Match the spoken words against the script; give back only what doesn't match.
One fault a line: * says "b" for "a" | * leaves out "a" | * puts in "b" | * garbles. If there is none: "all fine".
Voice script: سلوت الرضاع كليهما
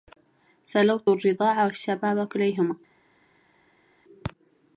* puts in "والشباب"